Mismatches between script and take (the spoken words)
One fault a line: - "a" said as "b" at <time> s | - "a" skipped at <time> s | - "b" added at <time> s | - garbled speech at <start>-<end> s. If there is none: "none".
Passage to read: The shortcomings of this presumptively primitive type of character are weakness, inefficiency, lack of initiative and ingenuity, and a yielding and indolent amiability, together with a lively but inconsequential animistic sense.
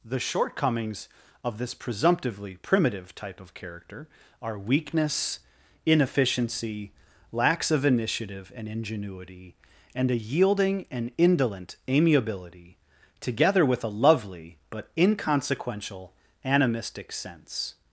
- "lack" said as "lacks" at 7.3 s
- "lively" said as "lovely" at 13.9 s